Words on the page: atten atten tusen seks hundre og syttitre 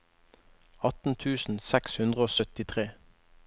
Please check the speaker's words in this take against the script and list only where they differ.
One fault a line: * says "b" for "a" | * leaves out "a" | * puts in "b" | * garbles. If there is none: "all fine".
* leaves out "atten"